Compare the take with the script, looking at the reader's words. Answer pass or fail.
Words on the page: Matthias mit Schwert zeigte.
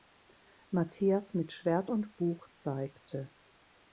fail